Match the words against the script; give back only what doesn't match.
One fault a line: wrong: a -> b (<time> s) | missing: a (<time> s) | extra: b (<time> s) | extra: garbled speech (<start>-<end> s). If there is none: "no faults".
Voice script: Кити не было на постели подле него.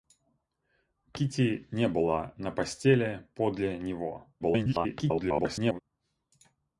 extra: garbled speech (4.4-5.8 s)